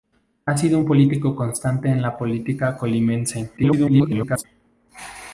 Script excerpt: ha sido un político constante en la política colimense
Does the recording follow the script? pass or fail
fail